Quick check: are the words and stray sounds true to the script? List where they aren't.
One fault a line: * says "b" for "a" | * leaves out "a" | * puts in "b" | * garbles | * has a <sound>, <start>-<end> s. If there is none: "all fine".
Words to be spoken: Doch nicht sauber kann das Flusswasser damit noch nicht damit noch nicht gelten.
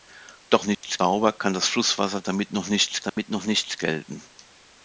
* has a dropout, 0.7-0.8 s
* has a dropout, 3.1-3.2 s